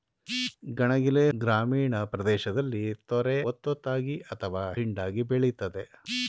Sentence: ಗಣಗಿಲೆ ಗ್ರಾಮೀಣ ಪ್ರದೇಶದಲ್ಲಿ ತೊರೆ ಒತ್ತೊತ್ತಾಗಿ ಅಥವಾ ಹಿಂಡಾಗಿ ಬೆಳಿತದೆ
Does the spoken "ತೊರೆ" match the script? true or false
true